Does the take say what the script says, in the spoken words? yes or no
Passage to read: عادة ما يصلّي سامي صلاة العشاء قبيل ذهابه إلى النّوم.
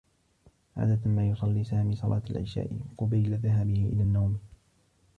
yes